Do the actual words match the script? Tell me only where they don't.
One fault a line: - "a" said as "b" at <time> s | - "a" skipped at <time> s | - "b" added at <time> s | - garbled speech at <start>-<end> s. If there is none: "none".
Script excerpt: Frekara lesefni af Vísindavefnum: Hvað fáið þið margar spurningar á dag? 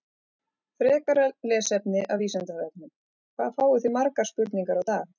none